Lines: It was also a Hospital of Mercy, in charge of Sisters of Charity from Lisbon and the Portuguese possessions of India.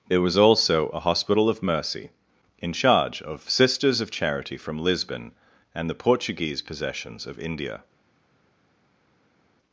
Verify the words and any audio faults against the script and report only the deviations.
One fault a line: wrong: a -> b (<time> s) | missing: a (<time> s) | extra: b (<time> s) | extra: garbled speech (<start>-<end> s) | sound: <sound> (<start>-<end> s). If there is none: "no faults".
no faults